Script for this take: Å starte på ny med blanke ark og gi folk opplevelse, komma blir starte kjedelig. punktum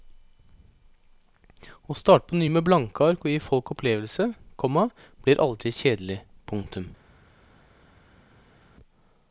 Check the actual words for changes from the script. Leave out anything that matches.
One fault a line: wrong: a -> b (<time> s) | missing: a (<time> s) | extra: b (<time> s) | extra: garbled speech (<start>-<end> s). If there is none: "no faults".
wrong: starte -> aldri (5.4 s)